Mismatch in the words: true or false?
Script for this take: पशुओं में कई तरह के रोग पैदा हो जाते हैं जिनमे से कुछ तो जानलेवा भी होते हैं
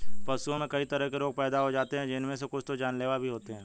false